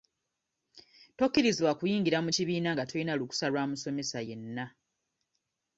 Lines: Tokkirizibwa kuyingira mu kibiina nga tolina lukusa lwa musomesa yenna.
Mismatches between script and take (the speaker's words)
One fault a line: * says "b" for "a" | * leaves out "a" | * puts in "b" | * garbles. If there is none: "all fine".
all fine